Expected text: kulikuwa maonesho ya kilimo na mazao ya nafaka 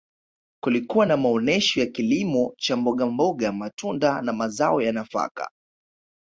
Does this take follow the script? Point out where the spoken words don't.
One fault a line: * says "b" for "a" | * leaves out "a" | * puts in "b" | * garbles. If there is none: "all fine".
* puts in "na"
* puts in "cha mbogamboga matunda"